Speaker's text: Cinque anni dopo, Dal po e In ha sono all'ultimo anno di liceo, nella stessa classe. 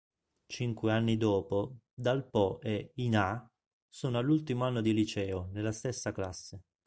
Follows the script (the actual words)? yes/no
yes